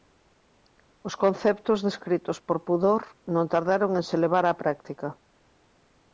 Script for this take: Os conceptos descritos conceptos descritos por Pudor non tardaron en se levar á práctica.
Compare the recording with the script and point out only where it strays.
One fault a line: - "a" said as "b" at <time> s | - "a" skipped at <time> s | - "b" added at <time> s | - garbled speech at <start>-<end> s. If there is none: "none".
- "conceptos descritos" skipped at 2.4 s